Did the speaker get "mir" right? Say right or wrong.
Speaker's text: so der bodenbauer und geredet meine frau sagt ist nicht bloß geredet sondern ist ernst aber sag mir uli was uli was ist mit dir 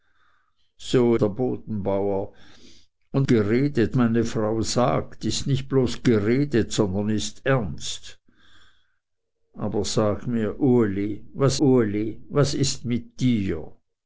right